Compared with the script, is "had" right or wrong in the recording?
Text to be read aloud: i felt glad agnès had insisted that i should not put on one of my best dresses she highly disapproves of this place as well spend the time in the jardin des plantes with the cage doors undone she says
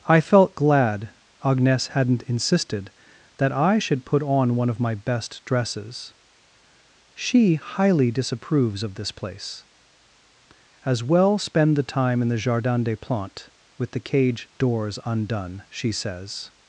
wrong